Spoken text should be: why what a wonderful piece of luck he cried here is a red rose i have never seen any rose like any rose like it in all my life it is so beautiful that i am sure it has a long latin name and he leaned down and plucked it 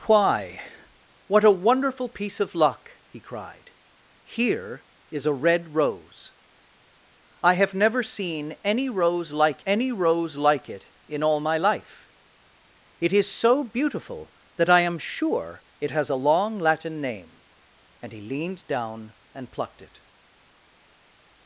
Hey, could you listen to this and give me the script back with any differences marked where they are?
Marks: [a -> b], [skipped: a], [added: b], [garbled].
why what a wonderful piece of luck he cried here is a red rose i have never seen any rose like any rose like it in all my life it is so beautiful that i am sure it has a long latin name and he leaned down and plucked it